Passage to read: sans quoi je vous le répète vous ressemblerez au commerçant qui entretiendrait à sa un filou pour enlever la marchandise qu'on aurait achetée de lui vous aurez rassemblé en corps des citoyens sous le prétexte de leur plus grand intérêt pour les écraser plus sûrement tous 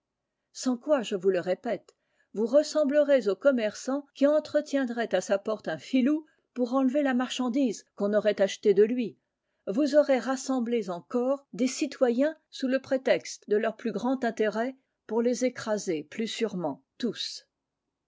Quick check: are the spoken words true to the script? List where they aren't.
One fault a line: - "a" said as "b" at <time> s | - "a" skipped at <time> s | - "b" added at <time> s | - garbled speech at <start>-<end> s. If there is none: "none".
- "porte" added at 5.4 s